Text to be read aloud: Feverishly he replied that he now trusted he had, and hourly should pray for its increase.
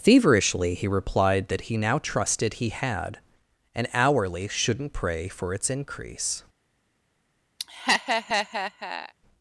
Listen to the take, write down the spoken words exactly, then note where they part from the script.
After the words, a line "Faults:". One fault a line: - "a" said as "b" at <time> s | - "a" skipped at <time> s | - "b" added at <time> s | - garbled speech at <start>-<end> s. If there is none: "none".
Feverishly he replied that he now trusted he had, and hourly shouldn't pray for its increase.
Faults:
- "should" said as "shouldn't" at 4.5 s